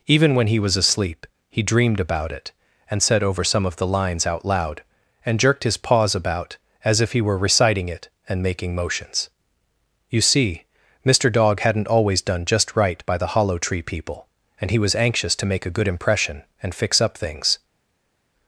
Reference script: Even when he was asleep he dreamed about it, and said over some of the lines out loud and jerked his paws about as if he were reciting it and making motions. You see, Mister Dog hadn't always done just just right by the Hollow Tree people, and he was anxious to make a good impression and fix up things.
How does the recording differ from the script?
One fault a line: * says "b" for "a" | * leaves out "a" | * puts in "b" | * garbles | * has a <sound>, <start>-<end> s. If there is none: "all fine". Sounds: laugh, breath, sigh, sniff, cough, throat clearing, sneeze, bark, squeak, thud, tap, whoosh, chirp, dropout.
* leaves out "just"